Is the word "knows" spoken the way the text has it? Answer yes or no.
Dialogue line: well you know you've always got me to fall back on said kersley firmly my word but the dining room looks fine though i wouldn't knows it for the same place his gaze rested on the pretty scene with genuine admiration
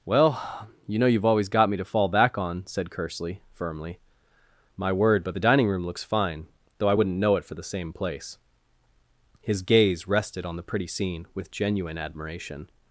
no